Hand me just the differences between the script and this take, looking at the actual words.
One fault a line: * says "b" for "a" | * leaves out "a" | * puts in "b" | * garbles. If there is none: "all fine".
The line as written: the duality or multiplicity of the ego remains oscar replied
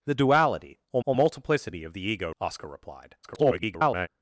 * puts in "or"
* leaves out "remains"
* garbles